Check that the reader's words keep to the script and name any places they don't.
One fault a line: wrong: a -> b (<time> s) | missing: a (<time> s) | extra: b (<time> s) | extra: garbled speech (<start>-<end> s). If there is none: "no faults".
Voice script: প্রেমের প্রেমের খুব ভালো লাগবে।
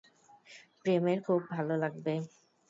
missing: প্রেমের (1.2 s)